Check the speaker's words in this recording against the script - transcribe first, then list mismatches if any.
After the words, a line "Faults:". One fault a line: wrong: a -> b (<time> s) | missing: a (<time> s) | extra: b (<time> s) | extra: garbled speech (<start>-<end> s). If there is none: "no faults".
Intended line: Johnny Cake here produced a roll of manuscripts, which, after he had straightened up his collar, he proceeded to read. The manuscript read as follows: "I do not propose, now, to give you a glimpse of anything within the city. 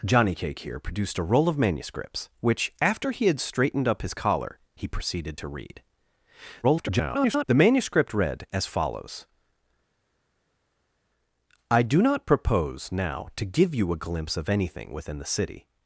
Johnny Cake here produced a roll of manuscripts, which, after he had straightened up his collar, he proceeded to read. [garbled] The manuscript read as follows: "I do not propose, now, to give you a glimpse of anything within the city.
Faults:
extra: garbled speech (6.6-7.4 s)